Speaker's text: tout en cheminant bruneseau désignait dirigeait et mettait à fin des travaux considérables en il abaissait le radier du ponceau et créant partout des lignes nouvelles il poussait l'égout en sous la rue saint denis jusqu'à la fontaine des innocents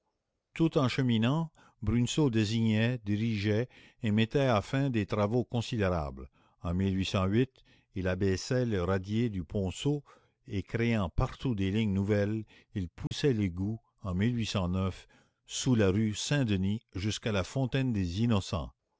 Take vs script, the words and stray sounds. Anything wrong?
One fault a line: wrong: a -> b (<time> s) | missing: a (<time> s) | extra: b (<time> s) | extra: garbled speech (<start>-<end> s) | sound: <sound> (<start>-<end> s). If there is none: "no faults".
sound: dropout (13.1-13.1 s)